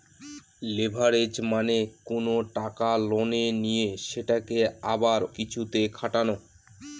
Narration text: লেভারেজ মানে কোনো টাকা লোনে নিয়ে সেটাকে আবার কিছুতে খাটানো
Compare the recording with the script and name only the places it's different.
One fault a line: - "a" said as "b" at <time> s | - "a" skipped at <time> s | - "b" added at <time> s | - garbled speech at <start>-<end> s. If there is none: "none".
none